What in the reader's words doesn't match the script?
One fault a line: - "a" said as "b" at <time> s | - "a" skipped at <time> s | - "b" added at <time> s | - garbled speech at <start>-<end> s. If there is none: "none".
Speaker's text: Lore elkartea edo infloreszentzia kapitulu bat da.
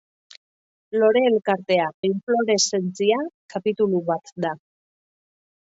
- "edo" skipped at 1.9 s